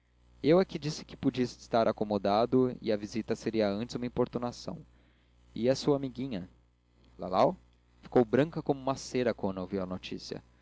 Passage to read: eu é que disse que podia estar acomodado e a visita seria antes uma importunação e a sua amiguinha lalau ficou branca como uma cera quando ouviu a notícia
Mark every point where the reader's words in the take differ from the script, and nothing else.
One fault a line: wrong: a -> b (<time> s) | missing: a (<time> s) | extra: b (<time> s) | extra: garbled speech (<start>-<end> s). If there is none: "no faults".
no faults